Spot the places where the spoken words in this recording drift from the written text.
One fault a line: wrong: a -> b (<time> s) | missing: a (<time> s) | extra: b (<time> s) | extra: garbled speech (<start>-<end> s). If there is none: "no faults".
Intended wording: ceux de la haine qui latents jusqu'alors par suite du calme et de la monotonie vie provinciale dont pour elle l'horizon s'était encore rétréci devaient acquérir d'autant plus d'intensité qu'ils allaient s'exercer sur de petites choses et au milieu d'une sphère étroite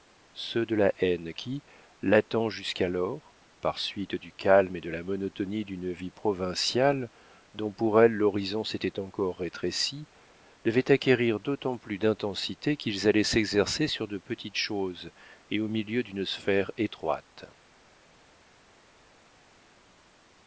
extra: d'une (5.6 s)